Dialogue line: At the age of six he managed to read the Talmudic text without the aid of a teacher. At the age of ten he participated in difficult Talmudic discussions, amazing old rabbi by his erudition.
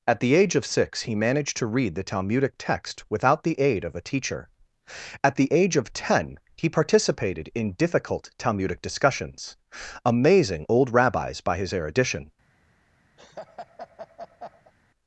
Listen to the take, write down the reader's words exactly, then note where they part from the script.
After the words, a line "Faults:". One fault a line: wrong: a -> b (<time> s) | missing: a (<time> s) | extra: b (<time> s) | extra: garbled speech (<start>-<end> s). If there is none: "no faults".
At the age of six he managed to read the Talmudic text without the aid of a teacher. At the age of ten he participated in difficult Talmudic discussions, amazing old rabbis by his erudition.
Faults:
wrong: rabbi -> rabbis (10.9 s)